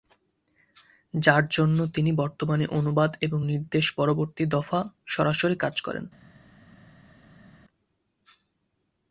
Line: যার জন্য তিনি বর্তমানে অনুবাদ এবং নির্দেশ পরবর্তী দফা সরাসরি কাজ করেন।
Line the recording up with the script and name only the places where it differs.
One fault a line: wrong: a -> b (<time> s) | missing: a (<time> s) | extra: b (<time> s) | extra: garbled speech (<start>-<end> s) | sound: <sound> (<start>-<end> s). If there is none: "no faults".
no faults